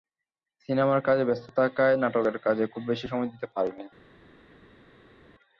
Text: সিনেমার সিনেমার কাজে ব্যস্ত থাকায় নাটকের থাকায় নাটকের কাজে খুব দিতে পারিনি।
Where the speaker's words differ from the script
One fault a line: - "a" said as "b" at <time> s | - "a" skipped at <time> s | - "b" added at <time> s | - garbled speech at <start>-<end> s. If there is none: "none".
- "সিনেমার" skipped at 1.0 s
- "থাকায় নাটকের কাজে খুব" said as "কাজে খুব বেশি সময়" at 2.5 s